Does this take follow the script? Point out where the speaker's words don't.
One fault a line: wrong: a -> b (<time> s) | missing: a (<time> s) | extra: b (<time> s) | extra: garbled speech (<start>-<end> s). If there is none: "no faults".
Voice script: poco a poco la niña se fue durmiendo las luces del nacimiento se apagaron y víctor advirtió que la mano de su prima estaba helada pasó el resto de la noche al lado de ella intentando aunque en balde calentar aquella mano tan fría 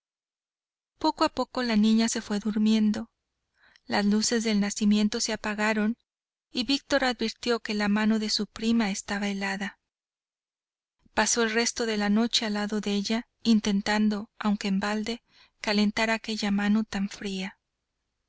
no faults